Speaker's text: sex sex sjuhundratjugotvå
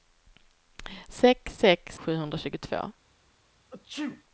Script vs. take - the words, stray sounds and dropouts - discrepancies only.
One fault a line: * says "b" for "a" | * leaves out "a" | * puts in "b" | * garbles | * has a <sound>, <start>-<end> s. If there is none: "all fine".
* has a sneeze, 3.7-4.2 s